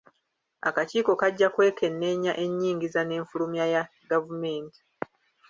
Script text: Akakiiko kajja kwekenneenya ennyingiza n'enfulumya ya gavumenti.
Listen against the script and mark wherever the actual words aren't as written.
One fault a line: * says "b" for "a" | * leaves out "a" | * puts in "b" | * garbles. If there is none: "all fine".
all fine